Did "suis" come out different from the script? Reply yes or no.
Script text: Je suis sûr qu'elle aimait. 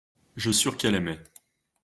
yes